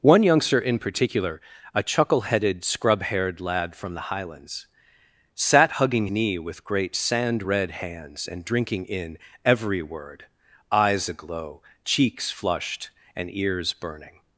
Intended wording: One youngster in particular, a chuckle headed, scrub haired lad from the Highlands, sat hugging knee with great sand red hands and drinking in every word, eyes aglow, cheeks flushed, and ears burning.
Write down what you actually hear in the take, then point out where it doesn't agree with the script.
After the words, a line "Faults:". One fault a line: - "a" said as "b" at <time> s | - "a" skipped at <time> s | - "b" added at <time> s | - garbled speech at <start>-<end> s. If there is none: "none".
One youngster in particular, a chuckle headed, scrub haired lad from the Highlands, sat hugging knee with great sand red hands and drinking in every word, eyes aglow, cheeks flushed, and ears burning.
Faults:
none